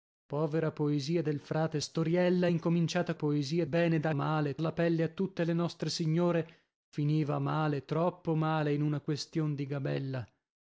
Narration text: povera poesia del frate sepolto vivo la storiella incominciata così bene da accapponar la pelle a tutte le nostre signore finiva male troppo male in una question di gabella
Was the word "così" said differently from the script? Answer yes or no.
yes